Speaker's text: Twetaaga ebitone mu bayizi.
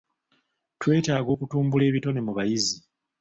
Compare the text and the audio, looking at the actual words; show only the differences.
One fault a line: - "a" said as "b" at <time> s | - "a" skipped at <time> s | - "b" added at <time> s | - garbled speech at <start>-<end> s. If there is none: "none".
- "okutumbula" added at 1.3 s